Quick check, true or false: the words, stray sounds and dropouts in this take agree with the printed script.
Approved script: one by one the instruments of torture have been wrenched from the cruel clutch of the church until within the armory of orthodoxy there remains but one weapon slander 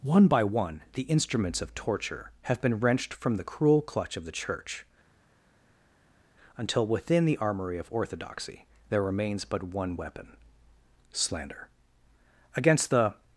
false